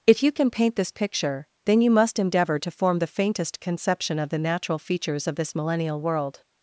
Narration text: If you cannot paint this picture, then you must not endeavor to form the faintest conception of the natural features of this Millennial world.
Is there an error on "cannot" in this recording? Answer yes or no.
yes